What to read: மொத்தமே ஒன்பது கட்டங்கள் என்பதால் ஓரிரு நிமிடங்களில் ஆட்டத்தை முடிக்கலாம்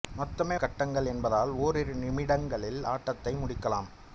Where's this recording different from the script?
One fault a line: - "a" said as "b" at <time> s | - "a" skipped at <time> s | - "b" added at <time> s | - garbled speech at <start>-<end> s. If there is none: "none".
- "ஒன்பது" skipped at 0.6 s